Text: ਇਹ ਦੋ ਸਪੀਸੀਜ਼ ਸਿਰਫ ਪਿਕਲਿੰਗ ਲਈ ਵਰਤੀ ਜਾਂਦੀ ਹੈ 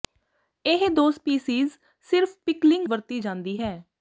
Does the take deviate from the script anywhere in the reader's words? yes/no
yes